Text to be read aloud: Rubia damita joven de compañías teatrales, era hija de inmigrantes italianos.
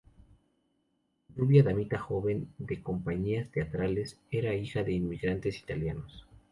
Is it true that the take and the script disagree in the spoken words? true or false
false